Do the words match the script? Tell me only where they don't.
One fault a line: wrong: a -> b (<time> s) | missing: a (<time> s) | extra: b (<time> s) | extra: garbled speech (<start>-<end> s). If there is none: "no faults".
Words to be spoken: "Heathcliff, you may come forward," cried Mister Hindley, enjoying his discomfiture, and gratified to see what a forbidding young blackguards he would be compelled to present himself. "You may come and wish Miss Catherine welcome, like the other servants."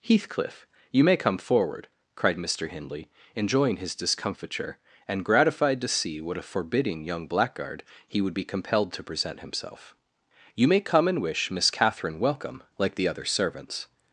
wrong: blackguards -> blackguard (7.3 s)